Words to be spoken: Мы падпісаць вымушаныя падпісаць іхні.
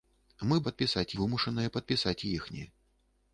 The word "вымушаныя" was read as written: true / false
true